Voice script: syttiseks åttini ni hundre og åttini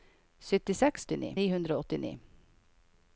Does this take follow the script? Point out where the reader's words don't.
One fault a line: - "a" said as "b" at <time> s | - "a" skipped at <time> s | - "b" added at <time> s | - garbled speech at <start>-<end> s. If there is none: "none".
none